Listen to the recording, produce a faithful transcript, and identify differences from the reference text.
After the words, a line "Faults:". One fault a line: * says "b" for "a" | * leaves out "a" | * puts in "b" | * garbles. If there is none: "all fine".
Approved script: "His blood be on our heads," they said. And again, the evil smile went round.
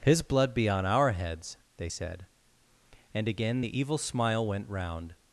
"His blood be on our heads," they said. And again, the evil smile went round.
Faults:
all fine